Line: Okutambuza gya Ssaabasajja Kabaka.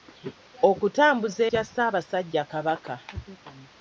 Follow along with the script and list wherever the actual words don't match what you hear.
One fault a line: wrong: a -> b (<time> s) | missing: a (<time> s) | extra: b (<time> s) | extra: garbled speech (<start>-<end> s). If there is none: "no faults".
no faults